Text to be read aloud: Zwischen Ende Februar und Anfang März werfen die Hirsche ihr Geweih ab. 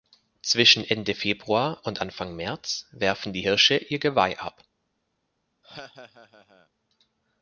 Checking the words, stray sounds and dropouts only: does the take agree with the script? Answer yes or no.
no